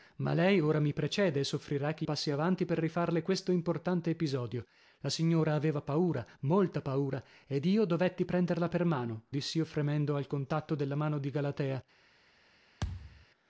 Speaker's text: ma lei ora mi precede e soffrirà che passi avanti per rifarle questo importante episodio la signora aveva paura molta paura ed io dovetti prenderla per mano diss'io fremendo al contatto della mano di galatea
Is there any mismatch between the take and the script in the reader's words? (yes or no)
no